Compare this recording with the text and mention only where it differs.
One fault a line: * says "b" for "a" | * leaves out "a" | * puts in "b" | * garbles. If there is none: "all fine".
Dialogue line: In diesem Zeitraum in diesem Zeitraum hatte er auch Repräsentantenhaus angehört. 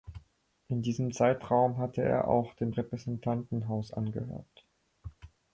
* leaves out "in diesem Zeitraum"
* puts in "dem"